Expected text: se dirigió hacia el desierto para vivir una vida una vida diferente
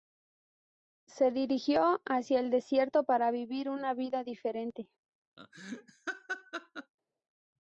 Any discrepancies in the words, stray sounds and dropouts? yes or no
yes